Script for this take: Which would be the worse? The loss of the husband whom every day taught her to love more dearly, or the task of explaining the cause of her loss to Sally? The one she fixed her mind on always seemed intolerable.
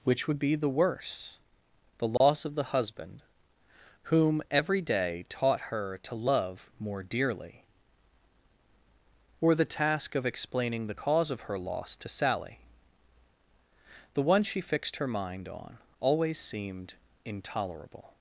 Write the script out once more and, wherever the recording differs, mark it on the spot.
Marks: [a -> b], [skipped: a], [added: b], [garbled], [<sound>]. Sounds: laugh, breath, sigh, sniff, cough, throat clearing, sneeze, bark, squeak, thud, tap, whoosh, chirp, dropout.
Which would be the worse? The loss [dropout] of the husband whom every day taught her to love more dearly, or the task of explaining the cause of her loss to Sally? The one she fixed her mind on always seemed intolerable.